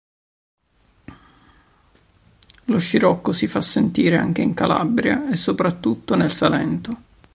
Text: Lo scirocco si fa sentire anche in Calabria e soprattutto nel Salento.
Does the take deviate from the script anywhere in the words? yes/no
no